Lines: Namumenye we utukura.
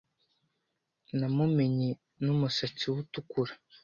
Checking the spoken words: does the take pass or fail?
fail